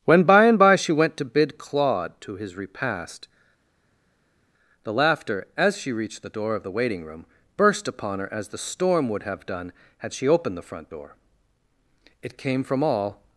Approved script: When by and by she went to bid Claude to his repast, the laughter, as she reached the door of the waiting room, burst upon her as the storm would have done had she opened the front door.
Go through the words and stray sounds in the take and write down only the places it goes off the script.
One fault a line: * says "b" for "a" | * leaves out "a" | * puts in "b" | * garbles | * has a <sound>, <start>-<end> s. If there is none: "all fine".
* puts in "It came from all"